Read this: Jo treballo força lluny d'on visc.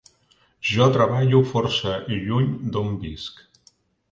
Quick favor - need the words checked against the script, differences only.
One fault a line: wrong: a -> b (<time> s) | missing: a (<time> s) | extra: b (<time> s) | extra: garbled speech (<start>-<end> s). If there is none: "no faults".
no faults